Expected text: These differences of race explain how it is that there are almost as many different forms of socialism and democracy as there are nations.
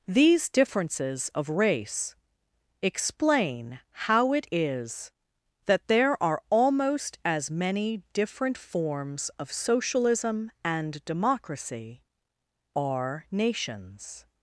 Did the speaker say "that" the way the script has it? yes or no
yes